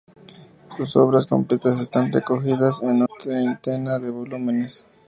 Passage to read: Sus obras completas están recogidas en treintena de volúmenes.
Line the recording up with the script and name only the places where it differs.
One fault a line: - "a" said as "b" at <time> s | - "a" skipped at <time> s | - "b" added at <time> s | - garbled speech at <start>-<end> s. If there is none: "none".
none